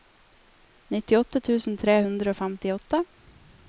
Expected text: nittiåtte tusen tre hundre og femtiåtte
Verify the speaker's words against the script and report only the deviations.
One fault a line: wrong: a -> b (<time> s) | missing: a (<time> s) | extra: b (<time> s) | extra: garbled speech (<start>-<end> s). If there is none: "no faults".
no faults